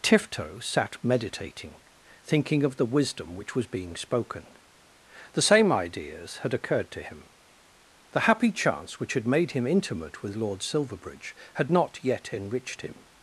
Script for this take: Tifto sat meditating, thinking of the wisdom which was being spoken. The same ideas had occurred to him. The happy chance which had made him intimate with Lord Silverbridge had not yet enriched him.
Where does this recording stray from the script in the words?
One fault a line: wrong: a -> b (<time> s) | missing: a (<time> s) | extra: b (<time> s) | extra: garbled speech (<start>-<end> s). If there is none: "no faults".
no faults